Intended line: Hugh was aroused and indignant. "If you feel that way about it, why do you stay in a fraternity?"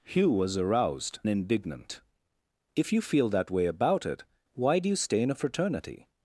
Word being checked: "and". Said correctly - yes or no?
no